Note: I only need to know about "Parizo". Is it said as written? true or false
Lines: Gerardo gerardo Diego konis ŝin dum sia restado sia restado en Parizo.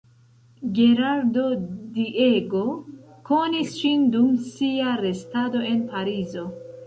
true